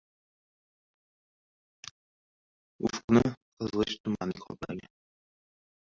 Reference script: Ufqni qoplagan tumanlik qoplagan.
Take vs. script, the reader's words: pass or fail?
fail